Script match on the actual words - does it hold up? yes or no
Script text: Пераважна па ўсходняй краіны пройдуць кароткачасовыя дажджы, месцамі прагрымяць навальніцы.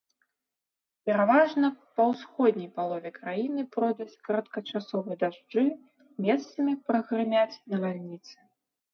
no